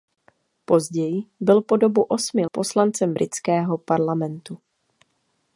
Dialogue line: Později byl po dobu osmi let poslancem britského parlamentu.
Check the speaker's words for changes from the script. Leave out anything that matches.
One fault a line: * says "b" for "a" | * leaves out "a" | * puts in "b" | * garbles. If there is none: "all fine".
* leaves out "let"